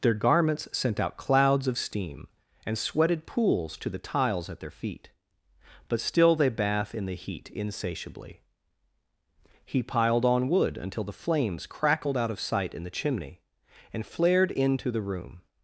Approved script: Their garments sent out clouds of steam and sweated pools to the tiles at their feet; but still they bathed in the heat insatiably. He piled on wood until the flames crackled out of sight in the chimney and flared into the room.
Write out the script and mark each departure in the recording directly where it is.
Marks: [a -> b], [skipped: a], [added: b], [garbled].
Their garments sent out clouds of steam and sweated pools to the tiles at their feet; but still they [bathed -> bath] in the heat insatiably. He piled on wood until the flames crackled out of sight in the chimney and flared into the room.